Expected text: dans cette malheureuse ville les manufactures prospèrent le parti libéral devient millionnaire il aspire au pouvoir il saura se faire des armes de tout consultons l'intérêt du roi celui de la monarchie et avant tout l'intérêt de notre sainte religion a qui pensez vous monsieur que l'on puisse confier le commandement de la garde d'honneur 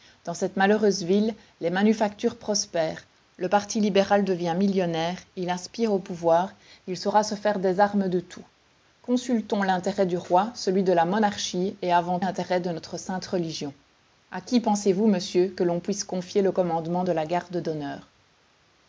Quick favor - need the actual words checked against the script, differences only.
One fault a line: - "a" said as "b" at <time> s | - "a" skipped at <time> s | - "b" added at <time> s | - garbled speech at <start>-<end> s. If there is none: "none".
- "tout" skipped at 12.2 s